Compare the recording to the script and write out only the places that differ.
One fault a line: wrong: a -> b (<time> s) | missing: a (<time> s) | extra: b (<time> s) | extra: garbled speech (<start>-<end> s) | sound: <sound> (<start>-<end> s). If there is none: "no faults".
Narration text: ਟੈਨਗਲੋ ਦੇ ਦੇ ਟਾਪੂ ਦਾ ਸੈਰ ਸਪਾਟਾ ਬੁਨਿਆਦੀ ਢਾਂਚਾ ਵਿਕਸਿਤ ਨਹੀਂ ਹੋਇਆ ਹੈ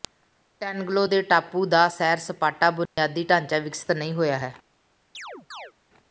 missing: ਦੇ (1.2 s)
sound: dropout (2.9-3.0 s)
sound: chirp (5.1-5.7 s)